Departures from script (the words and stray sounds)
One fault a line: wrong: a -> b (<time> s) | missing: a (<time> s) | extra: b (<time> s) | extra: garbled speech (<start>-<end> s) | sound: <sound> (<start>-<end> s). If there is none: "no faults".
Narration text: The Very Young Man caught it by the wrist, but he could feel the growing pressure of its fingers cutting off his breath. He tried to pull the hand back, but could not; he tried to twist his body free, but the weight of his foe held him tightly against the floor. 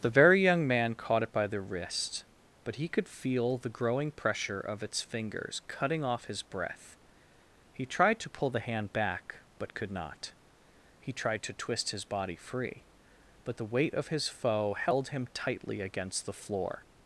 no faults